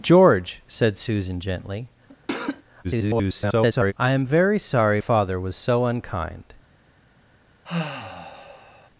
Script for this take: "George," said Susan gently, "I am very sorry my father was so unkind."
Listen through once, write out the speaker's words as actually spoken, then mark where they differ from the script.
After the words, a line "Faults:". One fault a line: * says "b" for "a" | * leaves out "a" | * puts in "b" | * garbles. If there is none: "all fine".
"George," said Susan gently, [garbled] "I am very sorry father was so unkind."
Faults:
* garbles
* leaves out "my"